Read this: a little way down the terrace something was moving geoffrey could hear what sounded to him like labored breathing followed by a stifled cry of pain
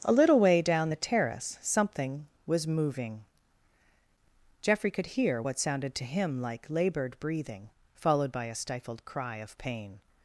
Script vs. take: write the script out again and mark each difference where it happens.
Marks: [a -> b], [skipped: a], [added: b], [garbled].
a little way down the terrace something was moving geoffrey could hear what sounded to him like labored breathing followed by a stifled cry of pain